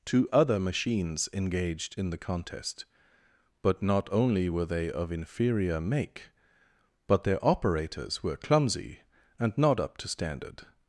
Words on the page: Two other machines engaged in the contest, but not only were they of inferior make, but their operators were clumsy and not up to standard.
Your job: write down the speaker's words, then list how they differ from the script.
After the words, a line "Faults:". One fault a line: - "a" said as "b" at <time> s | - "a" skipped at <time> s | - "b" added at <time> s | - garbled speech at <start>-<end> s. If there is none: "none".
Two other machines engaged in the contest, but not only were they of inferior make, but their operators were clumsy and not up to standard.
Faults:
none